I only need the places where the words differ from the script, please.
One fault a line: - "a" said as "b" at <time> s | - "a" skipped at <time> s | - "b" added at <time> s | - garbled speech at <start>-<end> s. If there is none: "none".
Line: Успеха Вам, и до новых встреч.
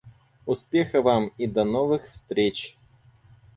none